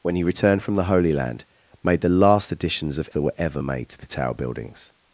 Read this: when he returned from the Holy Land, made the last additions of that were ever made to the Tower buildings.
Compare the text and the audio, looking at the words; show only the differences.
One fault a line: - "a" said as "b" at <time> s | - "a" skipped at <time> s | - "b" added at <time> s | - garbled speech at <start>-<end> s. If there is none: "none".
none